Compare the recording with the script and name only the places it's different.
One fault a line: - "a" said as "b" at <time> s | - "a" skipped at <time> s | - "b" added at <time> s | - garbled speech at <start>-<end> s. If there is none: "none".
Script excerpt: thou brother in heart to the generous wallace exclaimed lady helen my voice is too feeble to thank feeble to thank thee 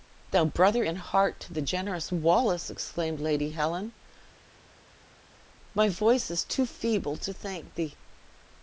- "feeble to thank" skipped at 7.7 s